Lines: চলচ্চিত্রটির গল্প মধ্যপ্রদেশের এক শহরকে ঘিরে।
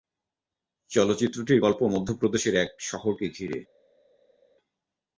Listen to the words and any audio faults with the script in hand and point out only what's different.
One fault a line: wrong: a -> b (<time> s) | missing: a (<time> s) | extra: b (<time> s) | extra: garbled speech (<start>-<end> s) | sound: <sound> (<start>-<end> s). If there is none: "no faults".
no faults